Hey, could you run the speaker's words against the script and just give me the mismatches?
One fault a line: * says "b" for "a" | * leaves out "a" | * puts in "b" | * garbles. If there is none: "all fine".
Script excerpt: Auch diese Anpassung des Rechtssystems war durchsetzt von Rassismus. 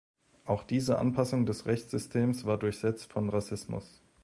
all fine